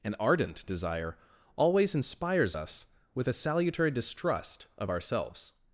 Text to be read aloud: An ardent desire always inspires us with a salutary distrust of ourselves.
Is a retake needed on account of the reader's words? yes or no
no